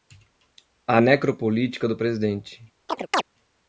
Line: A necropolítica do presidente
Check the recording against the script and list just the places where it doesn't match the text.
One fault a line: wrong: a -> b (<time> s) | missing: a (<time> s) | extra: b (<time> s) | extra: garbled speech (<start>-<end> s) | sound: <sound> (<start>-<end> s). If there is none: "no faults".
sound: chirp (2.9-3.2 s)